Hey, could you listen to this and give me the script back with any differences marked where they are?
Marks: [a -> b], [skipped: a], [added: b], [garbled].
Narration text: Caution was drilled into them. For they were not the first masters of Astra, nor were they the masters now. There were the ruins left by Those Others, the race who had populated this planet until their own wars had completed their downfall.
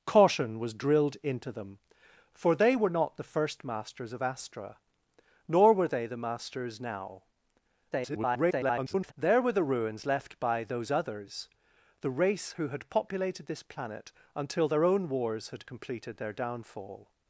Caution was drilled into them. For they were not the first masters of Astra, nor were they the masters now. [garbled] There were the ruins left by Those Others, the race who had populated this planet until their own wars had completed their downfall.